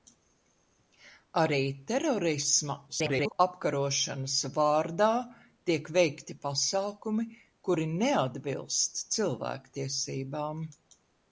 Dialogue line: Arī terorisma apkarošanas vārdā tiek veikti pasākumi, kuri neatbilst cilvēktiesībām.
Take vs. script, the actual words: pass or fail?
fail